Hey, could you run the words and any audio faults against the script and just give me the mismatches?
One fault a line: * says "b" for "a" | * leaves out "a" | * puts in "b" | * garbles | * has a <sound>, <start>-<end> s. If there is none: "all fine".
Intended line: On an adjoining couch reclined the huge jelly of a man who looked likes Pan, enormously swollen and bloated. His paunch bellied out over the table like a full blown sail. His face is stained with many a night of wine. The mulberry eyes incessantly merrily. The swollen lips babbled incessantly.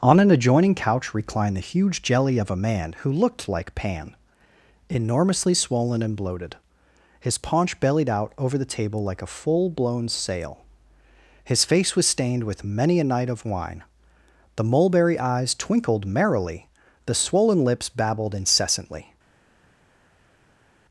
* says "like" for "likes"
* says "was" for "is"
* says "twinkled" for "incessantly"